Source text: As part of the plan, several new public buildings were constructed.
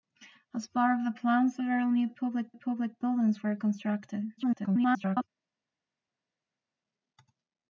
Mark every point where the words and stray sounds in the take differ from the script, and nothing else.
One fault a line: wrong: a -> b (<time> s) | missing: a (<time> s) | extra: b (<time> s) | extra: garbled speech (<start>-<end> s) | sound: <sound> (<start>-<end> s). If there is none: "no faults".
extra: public (2.5 s)
extra: garbled speech (4.4-5.3 s)